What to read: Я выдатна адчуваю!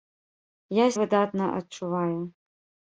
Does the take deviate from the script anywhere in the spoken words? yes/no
no